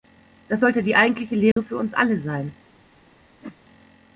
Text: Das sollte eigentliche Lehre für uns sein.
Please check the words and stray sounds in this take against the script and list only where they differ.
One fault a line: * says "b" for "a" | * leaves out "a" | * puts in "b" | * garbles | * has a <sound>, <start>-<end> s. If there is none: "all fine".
* puts in "die"
* has a dropout, 1.5-1.6 s
* puts in "alle"
* has a whoosh, 3.4-3.6 s